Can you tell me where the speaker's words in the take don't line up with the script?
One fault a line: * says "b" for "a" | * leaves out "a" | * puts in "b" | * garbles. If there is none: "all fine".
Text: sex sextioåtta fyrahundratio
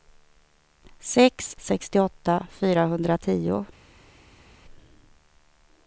all fine